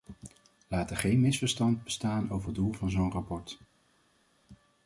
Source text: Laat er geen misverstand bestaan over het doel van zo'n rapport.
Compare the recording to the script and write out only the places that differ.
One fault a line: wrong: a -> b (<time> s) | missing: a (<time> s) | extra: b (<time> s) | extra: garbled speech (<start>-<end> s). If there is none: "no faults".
no faults